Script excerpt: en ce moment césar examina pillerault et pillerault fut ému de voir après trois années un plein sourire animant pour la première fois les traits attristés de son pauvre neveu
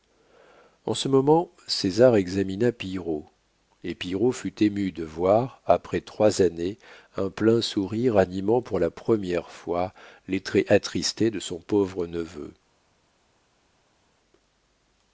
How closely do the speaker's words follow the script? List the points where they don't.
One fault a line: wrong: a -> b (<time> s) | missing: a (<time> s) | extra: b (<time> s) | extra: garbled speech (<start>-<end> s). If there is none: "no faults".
no faults